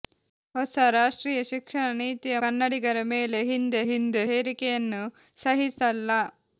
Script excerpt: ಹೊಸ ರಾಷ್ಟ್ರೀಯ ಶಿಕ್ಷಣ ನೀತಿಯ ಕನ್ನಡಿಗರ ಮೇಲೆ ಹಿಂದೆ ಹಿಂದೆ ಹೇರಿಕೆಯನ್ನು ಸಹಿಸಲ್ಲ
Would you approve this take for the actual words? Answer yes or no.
yes